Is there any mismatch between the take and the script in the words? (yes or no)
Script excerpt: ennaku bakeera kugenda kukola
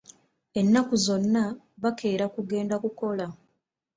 yes